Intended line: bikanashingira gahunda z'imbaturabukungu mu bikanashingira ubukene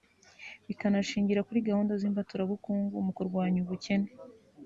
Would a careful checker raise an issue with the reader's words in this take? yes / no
yes